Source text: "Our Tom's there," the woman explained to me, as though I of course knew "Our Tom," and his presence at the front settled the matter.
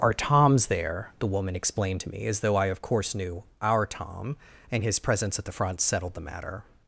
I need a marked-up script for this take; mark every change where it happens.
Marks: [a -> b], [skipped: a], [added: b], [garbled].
"Our Tom's there," the woman explained to me, as though I of course knew "Our Tom," and his presence at the front settled the matter.